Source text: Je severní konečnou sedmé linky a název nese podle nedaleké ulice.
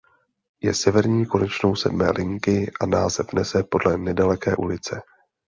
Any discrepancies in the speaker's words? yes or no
no